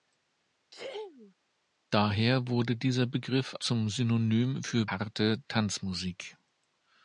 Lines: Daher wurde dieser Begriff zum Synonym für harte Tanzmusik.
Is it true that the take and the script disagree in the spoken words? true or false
false